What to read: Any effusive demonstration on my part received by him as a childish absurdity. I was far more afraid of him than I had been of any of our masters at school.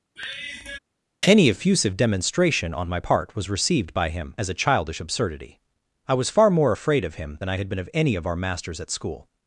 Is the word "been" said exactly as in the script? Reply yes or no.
yes